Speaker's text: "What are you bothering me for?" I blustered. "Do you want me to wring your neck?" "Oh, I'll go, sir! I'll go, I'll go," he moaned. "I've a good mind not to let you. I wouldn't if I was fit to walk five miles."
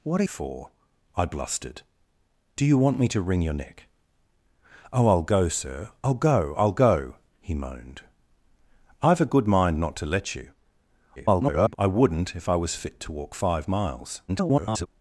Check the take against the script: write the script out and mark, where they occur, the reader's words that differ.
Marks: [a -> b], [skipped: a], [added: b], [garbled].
"What are [skipped: you bothering me] for?" I blustered. "Do you want me to wring your neck?" "Oh, I'll go, sir! I'll go, I'll go," he moaned. "I've a good mind not to let you. [garbled] I wouldn't if I was fit to walk five miles." [garbled]